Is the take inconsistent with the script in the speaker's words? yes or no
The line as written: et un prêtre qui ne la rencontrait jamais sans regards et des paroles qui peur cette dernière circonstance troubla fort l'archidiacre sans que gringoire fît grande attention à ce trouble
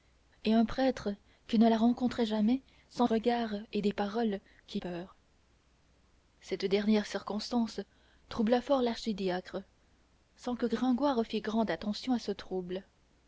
no